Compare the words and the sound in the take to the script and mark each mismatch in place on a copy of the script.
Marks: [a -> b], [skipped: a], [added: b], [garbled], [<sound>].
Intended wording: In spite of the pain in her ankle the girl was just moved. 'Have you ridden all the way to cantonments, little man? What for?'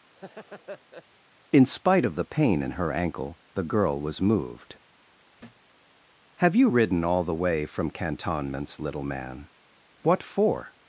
[laugh] In spite of the pain in her ankle the girl was [skipped: just] moved. [thud] 'Have you ridden all the way [to -> from] cantonments, little man? What for?'